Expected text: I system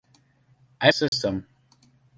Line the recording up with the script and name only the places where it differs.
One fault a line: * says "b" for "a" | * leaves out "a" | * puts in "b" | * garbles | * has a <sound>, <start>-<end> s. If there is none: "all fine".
* has a dropout, 1.1-1.1 s